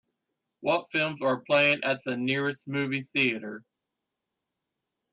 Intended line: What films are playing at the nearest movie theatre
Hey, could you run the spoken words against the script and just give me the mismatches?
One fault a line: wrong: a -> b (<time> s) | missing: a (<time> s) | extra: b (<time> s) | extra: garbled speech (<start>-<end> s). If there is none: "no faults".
no faults